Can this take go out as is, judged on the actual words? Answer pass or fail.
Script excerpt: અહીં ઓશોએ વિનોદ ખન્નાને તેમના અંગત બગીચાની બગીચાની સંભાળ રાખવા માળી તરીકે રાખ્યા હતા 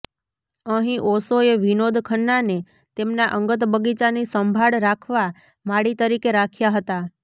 fail